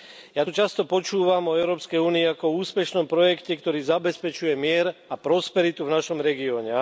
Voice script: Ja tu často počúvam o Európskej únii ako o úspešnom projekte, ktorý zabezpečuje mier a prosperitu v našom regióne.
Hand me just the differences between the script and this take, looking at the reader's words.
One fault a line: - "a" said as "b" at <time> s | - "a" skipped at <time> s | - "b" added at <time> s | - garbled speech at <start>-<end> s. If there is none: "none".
none